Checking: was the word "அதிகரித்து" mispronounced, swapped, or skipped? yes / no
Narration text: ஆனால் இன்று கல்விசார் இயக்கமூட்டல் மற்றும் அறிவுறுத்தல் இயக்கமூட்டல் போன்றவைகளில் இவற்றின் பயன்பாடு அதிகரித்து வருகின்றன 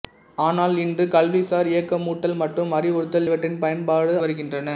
yes